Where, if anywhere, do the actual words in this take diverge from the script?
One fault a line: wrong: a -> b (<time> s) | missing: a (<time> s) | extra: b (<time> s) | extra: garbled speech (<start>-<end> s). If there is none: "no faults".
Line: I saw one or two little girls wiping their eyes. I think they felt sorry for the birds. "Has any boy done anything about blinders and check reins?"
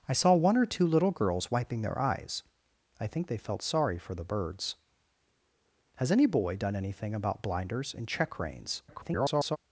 extra: garbled speech (8.9-9.6 s)